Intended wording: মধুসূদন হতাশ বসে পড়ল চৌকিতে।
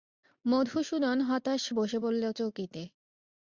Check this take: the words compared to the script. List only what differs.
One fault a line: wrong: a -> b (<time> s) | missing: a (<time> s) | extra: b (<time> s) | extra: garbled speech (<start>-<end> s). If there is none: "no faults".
no faults